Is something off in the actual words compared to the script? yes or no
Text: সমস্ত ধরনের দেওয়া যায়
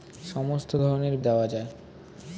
no